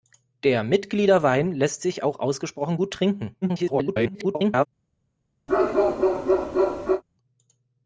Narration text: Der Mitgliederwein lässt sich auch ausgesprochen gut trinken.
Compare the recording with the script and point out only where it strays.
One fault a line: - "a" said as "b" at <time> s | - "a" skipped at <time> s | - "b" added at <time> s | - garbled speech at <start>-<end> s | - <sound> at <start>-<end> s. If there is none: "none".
- garbled speech at 3.4-4.7 s
- bark at 5.5-7.0 s